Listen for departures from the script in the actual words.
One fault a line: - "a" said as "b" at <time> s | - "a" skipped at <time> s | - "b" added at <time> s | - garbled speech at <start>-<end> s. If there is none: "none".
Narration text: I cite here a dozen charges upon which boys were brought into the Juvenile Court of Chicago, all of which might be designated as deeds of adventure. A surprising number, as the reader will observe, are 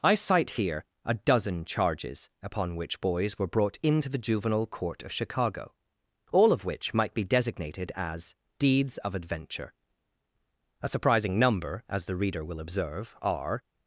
none